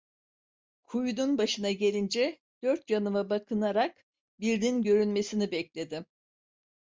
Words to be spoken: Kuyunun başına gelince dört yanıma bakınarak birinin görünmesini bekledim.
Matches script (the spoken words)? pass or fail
pass